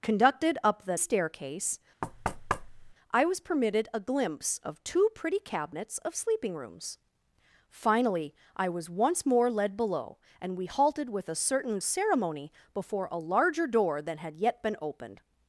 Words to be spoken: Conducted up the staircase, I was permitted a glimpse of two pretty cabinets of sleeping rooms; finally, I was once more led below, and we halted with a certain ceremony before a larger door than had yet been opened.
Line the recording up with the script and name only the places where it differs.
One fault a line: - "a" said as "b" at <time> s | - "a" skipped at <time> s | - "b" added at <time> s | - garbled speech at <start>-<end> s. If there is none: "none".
none